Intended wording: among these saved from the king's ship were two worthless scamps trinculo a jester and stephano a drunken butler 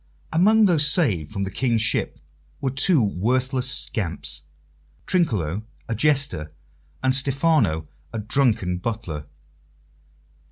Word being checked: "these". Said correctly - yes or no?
no